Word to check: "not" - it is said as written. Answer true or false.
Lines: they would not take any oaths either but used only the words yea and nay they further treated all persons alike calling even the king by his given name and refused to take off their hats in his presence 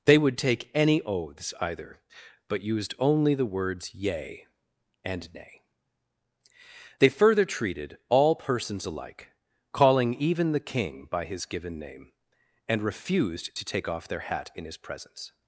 false